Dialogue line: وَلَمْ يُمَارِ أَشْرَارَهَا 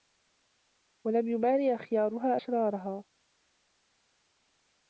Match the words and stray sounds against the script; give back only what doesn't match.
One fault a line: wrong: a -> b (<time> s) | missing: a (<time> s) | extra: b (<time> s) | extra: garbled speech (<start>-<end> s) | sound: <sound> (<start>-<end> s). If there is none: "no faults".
extra: أَخْيَارُهَا (1.8 s)